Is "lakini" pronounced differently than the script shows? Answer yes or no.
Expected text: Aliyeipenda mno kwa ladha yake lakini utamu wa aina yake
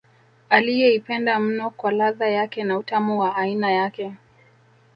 yes